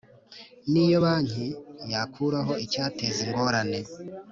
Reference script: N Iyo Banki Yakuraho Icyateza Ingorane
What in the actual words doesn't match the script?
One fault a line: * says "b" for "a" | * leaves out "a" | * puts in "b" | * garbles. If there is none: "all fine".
all fine